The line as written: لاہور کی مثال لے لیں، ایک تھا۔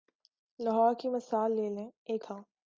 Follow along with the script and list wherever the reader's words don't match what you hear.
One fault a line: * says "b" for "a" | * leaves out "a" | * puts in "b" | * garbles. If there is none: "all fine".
all fine